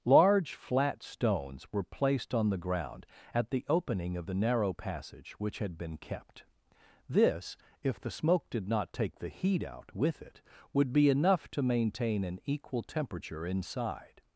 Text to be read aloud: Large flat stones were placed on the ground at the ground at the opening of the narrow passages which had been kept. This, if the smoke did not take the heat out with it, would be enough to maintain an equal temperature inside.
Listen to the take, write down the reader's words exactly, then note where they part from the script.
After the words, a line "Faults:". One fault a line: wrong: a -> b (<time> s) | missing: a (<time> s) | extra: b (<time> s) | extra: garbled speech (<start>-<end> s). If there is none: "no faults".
Large flat stones were placed on the ground at the opening of the narrow passage which had been kept. This, if the smoke did not take the heat out with it, would be enough to maintain an equal temperature inside.
Faults:
missing: ground at the (3.7 s)
wrong: passages -> passage (4.7 s)